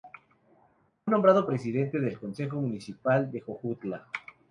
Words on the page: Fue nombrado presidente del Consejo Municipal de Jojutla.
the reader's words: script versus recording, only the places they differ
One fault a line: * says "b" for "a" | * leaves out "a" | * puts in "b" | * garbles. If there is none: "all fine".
all fine